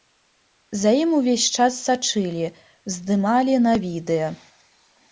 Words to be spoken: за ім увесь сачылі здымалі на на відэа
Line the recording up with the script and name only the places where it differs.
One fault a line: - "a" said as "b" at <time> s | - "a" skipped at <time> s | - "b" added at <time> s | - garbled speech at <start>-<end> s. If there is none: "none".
- "час" added at 1.6 s
- "на" skipped at 3.8 s